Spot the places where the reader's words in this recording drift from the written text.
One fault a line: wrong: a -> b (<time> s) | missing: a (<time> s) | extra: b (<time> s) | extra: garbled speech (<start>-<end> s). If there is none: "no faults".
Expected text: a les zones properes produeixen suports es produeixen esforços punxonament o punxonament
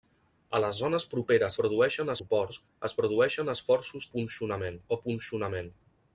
no faults